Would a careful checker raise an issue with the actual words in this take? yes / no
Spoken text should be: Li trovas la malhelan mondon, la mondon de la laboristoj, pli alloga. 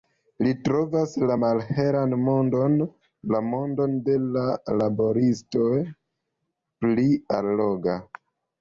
no